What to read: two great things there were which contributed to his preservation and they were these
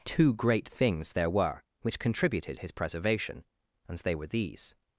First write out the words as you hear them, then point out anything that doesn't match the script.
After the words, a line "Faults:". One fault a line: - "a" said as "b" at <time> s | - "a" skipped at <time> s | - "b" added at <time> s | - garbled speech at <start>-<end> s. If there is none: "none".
two great things there were which contributed his preservation and they were these
Faults:
- "to" skipped at 2.6 s